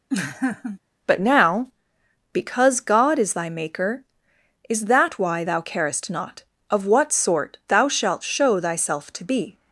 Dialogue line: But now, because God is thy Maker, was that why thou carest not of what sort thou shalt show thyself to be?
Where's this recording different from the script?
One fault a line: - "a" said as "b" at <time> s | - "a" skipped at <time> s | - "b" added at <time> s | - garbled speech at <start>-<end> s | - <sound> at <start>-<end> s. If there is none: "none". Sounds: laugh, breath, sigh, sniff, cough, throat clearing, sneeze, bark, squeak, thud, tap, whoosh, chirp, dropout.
- laugh at 0.1-0.8 s
- "was" said as "is" at 4.7 s